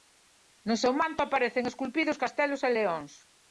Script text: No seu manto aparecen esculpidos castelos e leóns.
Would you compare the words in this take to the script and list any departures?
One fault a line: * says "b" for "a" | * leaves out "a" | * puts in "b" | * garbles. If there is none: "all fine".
all fine